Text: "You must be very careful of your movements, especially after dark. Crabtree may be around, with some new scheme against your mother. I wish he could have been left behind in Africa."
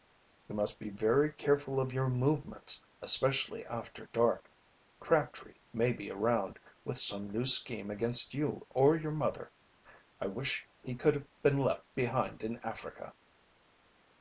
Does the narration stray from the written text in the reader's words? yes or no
yes